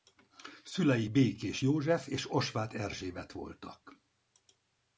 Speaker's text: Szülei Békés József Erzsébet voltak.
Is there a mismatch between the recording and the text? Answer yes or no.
yes